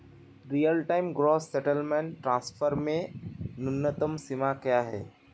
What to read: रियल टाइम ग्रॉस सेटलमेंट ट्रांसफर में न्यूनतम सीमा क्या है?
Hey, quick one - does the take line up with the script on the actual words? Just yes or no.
yes